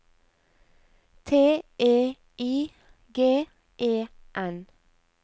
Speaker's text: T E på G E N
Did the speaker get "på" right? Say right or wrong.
wrong